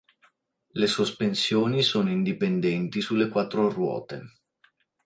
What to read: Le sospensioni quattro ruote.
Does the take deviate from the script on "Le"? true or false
false